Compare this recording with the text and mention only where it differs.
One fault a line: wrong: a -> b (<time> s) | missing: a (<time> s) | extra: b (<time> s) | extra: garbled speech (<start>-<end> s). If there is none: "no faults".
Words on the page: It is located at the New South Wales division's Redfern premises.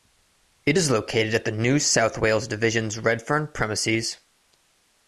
no faults